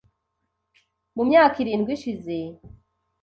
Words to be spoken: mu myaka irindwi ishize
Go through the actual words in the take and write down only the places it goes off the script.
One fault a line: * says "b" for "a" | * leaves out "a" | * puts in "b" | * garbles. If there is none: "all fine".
all fine